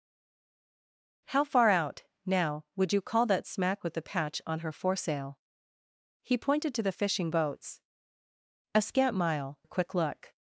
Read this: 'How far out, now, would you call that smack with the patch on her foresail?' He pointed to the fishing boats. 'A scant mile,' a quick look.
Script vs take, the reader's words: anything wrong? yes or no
no